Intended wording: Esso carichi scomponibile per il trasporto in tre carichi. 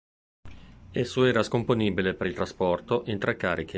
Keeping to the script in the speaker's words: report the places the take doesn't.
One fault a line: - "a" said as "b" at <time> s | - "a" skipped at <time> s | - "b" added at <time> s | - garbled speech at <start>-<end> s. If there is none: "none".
- "carichi" said as "era" at 1.2 s